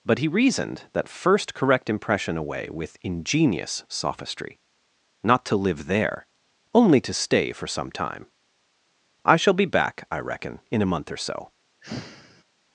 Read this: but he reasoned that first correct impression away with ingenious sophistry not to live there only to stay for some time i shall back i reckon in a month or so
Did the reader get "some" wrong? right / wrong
right